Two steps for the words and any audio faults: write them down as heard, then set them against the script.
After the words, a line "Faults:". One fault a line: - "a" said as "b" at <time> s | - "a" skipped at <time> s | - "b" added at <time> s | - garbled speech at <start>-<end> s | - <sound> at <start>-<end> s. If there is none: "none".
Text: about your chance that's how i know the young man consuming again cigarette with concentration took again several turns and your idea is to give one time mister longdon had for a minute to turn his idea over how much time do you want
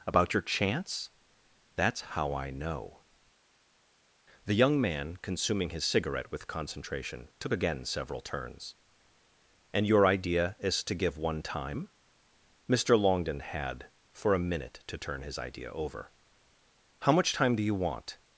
about your chance that's how i know the young man consuming his cigarette with concentration took again several turns and your idea is to give one time mister longdon had for a minute to turn his idea over how much time do you want
Faults:
- "again" said as "his" at 5.7 s